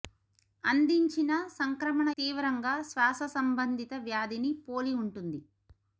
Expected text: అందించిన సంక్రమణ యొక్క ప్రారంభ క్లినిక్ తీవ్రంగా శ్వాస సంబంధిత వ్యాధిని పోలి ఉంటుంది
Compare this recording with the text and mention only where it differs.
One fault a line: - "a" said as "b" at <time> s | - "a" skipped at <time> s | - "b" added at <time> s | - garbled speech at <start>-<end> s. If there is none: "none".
- "యొక్క ప్రారంభ క్లినిక్" skipped at 2.1 s